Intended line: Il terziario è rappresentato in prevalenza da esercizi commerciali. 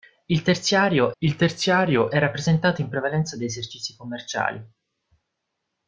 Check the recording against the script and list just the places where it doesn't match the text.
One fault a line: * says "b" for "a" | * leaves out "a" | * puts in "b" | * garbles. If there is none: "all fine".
* puts in "il terziario"